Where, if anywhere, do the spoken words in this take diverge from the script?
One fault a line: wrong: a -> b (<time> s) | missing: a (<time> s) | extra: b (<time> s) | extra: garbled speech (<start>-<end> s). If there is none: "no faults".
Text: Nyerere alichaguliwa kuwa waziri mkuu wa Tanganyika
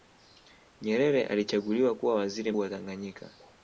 missing: mkuu (2.5 s)